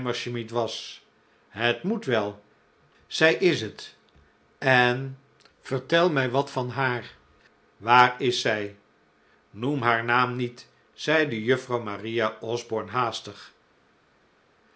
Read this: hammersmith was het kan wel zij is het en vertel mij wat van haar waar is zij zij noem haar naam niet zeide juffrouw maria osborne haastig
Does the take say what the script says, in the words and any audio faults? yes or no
no